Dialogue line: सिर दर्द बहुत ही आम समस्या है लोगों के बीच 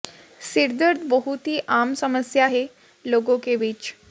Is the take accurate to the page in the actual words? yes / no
yes